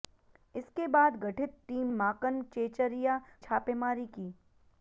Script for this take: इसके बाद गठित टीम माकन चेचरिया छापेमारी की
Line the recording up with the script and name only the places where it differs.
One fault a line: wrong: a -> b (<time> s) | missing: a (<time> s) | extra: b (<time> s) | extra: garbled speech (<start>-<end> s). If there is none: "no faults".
no faults